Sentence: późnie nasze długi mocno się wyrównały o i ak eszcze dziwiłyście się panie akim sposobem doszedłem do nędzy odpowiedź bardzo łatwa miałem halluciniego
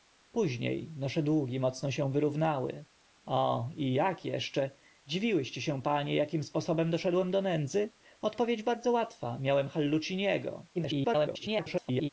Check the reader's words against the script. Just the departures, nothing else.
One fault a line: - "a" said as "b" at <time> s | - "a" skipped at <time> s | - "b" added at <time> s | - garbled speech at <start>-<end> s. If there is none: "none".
- garbled speech at 10.7-12.1 s